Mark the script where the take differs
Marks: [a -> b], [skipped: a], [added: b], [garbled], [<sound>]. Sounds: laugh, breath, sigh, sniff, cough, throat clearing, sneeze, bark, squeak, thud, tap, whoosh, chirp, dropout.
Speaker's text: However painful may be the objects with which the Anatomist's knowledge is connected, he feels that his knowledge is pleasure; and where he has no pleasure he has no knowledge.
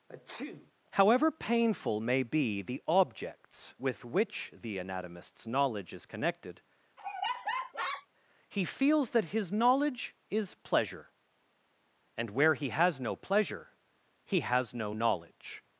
[sneeze] However painful may be the objects with which the Anatomist's knowledge is connected, [laugh] he feels that his knowledge is pleasure; and where he has no pleasure he has no knowledge.